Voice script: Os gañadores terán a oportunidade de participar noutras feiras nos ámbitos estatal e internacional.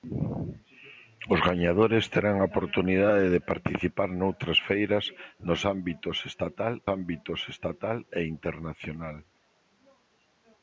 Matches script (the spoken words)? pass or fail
fail